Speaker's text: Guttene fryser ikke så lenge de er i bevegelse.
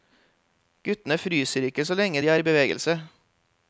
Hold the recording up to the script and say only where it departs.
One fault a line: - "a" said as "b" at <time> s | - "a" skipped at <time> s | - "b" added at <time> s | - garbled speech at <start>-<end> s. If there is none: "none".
none